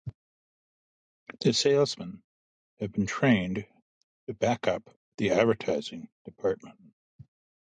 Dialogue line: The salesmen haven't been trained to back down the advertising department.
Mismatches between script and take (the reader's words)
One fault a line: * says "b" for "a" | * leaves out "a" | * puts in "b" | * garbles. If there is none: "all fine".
* says "have" for "haven't"
* says "up" for "down"